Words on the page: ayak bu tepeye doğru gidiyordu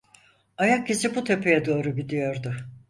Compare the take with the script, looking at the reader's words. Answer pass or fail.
fail